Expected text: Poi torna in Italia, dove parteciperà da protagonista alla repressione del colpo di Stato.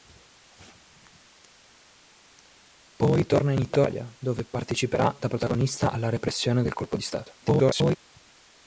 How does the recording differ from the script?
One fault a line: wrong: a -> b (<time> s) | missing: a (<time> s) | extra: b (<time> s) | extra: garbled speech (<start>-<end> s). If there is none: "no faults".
extra: garbled speech (7.4-8.0 s)